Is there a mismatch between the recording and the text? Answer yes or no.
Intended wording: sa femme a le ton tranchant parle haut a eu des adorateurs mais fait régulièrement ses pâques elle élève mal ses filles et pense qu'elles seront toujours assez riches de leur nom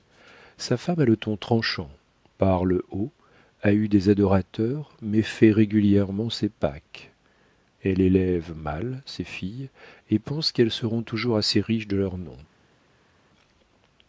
no